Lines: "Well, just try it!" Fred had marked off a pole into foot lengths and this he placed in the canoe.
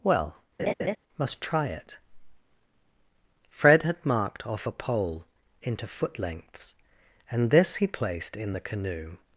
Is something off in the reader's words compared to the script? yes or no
yes